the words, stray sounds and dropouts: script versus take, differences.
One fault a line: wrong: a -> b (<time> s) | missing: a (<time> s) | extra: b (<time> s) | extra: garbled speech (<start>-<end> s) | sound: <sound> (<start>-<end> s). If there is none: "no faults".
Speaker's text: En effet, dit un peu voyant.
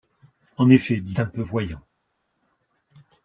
no faults